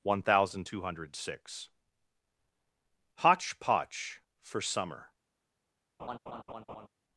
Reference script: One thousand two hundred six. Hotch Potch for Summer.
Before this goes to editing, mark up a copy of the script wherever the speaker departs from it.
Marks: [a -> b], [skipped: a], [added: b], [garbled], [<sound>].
One thousand two hundred six. Hotch Potch for Summer. [laugh]